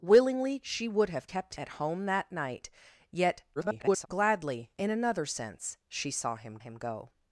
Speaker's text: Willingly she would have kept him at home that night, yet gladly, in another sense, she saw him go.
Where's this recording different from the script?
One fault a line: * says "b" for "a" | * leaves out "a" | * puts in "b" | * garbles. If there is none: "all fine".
* leaves out "him"
* garbles
* puts in "him"